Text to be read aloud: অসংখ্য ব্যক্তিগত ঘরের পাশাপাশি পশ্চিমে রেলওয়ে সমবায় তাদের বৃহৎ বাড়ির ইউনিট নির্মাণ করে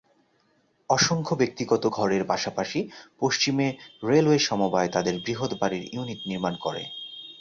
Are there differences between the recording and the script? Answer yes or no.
no